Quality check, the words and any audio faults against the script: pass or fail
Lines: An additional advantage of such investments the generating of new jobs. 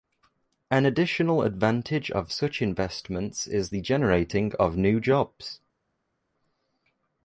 fail